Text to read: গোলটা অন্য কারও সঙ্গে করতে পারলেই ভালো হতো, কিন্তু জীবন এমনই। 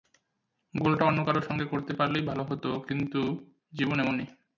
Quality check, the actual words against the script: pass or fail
pass